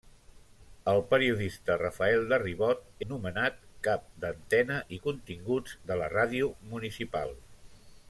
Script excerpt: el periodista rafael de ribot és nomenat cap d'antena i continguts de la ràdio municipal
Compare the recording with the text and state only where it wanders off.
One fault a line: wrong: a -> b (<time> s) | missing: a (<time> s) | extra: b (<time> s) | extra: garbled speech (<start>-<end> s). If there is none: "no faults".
missing: és (2.8 s)